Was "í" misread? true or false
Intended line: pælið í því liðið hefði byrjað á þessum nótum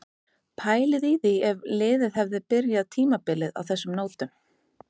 false